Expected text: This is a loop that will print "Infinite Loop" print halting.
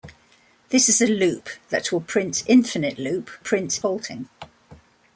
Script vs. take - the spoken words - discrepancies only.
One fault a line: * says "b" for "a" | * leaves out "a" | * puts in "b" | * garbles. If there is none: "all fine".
all fine